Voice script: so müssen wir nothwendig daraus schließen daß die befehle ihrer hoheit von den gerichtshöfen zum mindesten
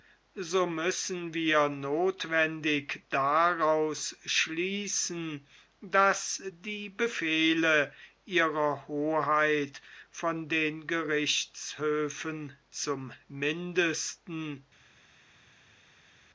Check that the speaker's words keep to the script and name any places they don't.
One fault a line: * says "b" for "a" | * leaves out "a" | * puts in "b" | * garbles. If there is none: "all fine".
all fine